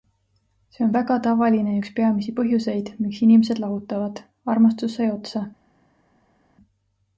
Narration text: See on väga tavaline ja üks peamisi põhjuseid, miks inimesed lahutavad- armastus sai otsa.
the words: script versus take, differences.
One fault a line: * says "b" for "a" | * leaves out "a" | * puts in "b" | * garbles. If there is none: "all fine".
all fine